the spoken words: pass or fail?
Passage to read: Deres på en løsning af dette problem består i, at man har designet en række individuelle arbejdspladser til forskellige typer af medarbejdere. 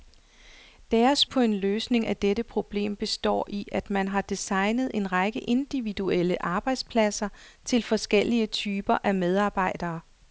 pass